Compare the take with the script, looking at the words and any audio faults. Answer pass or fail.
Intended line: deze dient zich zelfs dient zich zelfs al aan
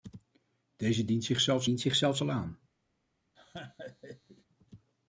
fail